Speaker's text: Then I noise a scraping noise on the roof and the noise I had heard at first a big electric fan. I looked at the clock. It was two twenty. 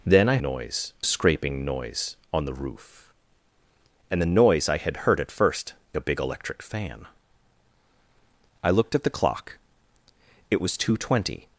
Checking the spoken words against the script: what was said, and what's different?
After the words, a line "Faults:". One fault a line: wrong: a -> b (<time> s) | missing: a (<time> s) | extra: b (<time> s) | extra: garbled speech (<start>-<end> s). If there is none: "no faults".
Then I noise a scraping noise on the roof and the noise I had heard at first a big electric fan. I looked at the clock. It was two twenty.
Faults:
no faults